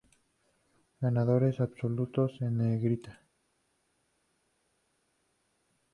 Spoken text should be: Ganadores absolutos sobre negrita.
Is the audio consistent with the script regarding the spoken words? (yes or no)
no